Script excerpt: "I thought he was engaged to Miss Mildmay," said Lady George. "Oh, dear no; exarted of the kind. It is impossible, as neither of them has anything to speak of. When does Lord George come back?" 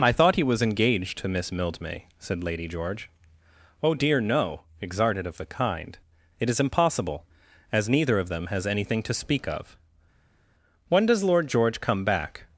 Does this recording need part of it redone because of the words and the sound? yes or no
no